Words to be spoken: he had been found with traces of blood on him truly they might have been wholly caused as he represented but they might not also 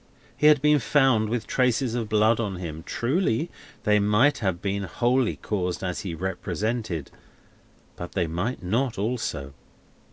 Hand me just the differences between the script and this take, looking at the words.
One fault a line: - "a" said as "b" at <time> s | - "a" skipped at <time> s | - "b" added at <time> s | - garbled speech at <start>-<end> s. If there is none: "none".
none